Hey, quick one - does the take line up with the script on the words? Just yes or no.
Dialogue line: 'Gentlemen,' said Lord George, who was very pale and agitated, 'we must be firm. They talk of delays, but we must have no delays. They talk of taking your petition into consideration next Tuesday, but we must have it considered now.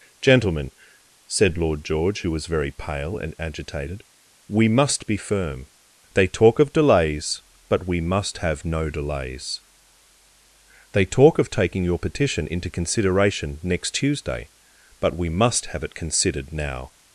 yes